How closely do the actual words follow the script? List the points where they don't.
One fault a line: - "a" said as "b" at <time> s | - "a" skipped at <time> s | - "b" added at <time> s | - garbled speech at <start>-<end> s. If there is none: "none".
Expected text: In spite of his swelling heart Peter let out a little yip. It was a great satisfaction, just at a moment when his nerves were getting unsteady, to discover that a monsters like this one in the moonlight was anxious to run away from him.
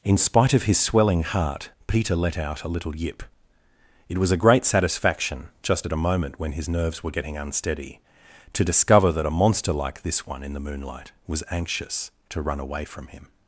- "monsters" said as "monster" at 9.4 s